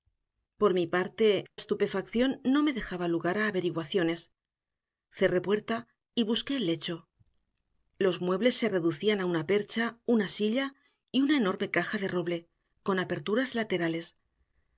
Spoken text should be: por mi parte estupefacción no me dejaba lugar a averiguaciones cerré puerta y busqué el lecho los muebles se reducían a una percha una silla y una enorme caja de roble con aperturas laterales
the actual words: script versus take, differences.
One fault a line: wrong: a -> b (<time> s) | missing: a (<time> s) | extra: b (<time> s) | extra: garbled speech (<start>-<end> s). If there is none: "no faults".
no faults